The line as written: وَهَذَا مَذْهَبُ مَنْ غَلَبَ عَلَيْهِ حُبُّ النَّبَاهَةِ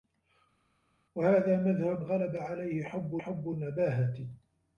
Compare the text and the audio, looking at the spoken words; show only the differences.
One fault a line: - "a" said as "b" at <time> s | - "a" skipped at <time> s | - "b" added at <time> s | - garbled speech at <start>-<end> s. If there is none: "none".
- "مَنْ" skipped at 2.0 s
- "حُبُّ" added at 3.2 s